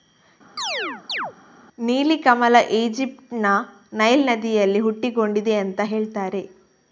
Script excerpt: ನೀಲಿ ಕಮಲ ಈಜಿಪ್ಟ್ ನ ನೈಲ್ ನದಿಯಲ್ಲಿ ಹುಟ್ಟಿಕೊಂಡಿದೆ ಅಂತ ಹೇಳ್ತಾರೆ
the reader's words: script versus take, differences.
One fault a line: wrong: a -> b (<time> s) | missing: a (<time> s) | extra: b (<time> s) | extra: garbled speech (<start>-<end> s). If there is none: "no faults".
no faults